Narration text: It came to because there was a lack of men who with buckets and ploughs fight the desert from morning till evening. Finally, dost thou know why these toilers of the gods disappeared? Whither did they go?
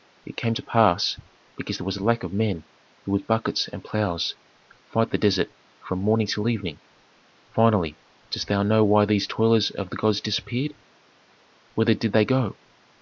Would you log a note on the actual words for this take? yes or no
yes